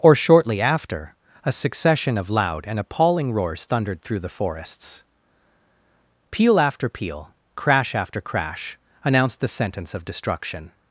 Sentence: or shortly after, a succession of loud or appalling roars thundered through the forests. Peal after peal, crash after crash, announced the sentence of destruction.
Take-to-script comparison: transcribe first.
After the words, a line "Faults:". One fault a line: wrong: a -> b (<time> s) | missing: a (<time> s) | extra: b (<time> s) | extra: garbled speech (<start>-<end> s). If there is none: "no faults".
or shortly after, a succession of loud and appalling roars thundered through the forests. Peal after peal, crash after crash, announced the sentence of destruction.
Faults:
wrong: or -> and (2.6 s)